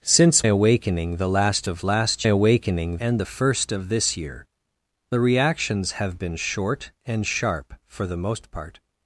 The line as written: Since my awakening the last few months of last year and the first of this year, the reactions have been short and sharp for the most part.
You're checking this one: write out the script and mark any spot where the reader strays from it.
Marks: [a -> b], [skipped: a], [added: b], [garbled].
Since [skipped: my] awakening the last [skipped: few months] of last [year -> awakening] and the first of this year, the reactions have been short and sharp for the most part.